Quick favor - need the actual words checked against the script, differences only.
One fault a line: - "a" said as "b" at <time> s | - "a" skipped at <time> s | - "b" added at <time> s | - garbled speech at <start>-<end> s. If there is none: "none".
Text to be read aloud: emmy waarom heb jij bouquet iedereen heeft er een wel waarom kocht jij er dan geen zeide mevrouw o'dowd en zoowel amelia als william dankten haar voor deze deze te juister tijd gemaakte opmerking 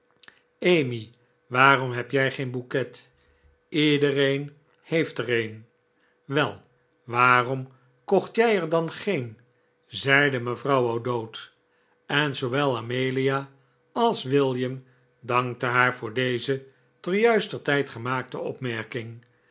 - "geen" added at 2.3 s
- "deze" skipped at 16.6 s